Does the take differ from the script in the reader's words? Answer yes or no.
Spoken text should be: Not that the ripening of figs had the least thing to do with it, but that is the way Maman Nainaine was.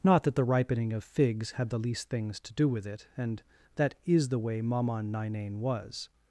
yes